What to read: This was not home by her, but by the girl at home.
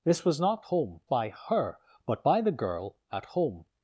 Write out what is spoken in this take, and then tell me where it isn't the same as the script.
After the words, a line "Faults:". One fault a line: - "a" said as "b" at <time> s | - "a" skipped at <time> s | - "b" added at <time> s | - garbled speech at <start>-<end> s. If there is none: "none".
This was not home by her, but by the girl at home.
Faults:
none